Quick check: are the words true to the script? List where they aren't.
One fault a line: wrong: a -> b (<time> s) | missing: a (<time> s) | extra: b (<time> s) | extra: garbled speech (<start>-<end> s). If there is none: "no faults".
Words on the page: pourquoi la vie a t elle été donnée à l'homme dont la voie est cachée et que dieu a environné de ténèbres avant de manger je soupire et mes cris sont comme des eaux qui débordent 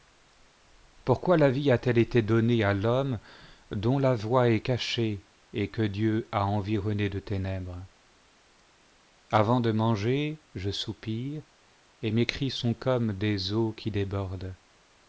no faults